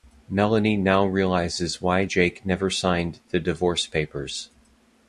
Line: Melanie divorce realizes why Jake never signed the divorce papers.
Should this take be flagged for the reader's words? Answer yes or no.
yes